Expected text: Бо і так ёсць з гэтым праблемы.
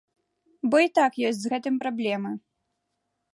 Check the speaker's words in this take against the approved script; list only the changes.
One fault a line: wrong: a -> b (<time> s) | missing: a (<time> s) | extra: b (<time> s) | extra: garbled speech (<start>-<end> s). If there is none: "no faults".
no faults